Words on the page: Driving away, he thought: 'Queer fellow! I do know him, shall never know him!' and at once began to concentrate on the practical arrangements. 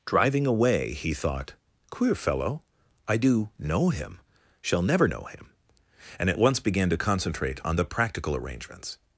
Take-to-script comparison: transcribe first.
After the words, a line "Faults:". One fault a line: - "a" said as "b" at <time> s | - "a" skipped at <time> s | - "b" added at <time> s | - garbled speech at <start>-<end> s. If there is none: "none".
Driving away, he thought: 'Queer fellow! I do know him, shall never know him!' and at once began to concentrate on the practical arrangements.
Faults:
none